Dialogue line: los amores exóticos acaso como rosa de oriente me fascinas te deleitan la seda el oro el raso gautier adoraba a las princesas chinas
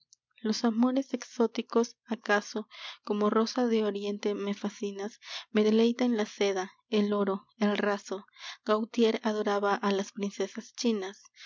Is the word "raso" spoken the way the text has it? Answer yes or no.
yes